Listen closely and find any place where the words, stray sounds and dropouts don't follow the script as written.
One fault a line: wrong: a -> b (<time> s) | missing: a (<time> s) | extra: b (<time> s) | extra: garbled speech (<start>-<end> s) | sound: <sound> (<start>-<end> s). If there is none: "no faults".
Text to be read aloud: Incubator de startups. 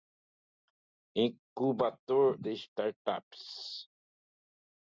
no faults